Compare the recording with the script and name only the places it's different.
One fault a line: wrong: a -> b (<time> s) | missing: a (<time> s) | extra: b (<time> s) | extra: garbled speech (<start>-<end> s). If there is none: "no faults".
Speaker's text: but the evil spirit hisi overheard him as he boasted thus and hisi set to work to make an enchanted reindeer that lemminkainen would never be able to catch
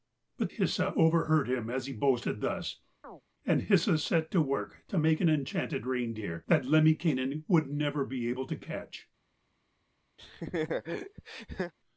missing: the evil spirit (0.5 s)